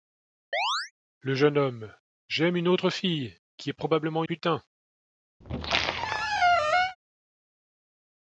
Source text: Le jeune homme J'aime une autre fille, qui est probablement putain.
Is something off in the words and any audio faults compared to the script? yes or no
yes